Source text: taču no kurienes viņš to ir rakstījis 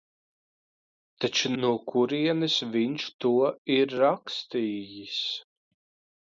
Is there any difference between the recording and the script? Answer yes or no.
no